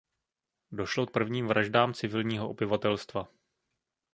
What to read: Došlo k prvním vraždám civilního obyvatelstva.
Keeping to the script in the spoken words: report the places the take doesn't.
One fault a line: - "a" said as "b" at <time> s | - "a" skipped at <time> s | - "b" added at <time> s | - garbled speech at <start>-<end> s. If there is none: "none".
none